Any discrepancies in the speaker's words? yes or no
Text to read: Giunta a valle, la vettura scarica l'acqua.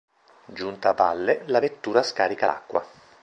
no